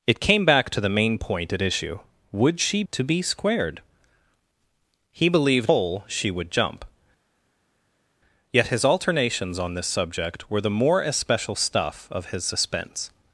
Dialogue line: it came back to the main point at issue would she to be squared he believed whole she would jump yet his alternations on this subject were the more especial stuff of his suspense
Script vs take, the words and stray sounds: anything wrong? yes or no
no